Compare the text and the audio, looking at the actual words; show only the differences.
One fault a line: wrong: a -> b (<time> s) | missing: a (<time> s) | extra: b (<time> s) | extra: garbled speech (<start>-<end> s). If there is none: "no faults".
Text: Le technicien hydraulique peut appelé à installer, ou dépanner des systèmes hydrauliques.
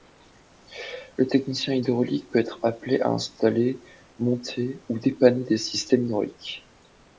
extra: être (2.4 s)
extra: monter (4.2 s)